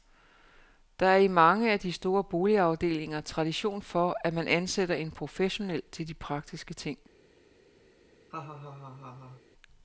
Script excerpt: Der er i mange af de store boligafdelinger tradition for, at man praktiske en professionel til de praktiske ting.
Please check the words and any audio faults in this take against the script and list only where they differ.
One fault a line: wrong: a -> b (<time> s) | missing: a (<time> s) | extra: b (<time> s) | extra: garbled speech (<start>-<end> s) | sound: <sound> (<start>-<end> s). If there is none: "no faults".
wrong: praktiske -> ansætter (4.5 s)
sound: laugh (8.3-9.4 s)